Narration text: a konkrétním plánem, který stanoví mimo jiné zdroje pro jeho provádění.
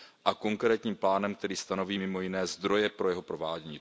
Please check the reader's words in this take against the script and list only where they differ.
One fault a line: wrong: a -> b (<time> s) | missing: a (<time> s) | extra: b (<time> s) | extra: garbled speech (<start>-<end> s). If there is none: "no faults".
no faults